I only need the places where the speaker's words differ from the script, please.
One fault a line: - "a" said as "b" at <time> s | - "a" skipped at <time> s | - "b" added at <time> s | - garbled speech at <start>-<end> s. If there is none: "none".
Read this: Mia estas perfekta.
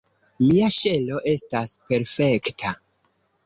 - "ŝelo" added at 0.8 s